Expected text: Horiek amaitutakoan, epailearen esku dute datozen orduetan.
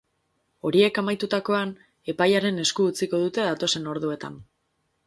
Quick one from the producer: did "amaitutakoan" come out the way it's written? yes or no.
yes